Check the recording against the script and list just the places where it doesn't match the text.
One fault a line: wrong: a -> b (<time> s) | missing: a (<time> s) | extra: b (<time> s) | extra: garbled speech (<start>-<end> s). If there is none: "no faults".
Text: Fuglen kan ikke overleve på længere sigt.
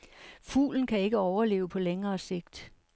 no faults